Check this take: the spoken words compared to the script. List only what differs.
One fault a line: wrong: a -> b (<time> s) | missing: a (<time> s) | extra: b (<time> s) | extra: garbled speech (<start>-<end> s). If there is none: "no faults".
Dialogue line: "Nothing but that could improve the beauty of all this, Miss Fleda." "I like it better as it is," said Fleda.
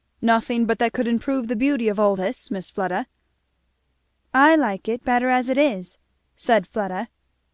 no faults